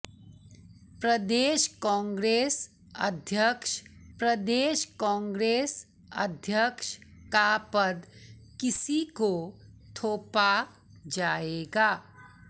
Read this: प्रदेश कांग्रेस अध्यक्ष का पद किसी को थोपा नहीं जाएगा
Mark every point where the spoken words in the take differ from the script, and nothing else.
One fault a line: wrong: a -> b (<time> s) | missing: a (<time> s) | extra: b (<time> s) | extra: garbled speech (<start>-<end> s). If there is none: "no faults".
extra: प्रदेश कांग्रेस अध्यक्ष (4.2 s)
missing: नहीं (10.5 s)